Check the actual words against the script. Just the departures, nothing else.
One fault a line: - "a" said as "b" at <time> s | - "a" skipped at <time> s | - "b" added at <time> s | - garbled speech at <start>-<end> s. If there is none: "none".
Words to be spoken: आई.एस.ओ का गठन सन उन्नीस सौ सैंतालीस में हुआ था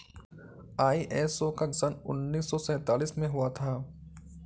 - "गठन" skipped at 1.6 s